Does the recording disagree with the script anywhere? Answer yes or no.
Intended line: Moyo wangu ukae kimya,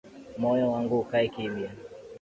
no